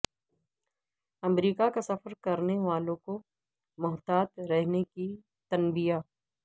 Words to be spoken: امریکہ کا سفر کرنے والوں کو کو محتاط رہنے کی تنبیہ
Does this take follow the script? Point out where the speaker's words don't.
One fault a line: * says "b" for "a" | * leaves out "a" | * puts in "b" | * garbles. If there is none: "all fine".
* leaves out "کو"